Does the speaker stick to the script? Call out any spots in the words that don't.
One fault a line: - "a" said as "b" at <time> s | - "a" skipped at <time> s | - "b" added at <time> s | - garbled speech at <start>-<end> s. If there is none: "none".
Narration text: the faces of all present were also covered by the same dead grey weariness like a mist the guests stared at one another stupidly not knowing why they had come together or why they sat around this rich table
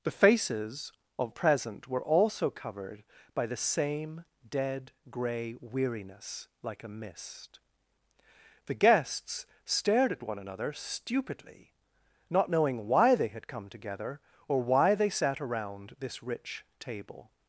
- "all" skipped at 1.3 s